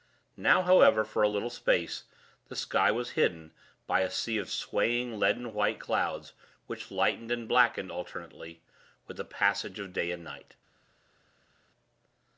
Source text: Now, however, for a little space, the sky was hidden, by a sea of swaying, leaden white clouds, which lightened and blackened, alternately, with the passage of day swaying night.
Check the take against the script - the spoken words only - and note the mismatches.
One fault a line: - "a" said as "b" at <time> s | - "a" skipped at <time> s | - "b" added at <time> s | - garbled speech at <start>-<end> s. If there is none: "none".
- "swaying" said as "and" at 10.1 s